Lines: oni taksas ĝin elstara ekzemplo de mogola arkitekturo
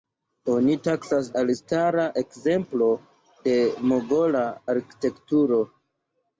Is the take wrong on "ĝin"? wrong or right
wrong